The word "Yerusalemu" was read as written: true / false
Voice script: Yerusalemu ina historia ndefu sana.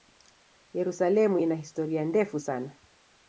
true